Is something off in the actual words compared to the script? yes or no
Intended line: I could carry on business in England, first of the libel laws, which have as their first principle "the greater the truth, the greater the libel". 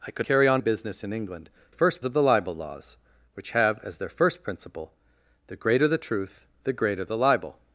no